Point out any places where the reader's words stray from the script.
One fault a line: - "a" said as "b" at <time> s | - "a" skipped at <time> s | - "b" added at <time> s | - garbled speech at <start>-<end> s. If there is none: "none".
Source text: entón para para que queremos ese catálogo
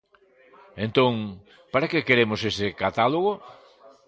- "para" skipped at 1.9 s